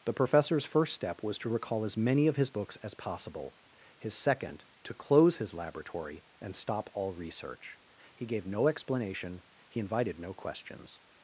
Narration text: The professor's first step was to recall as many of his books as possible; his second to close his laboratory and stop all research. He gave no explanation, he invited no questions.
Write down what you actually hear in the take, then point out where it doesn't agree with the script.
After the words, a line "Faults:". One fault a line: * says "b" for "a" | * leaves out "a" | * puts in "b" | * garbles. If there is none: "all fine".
The professor's first step was to recall as many of his books as possible; his second to close his laboratory and stop all research. He gave no explanation, he invited no questions.
Faults:
all fine